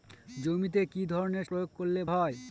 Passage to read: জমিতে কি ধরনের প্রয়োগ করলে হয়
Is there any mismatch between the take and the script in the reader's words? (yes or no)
no